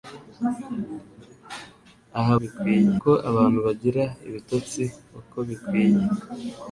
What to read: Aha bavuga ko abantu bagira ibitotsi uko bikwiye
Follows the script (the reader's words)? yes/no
no